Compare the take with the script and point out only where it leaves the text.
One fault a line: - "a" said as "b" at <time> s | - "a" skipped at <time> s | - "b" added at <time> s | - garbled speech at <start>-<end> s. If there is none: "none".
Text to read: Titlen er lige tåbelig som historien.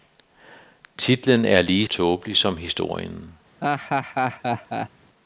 none